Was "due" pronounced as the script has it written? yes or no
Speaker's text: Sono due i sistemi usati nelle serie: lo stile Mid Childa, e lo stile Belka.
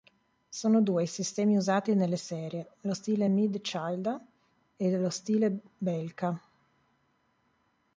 yes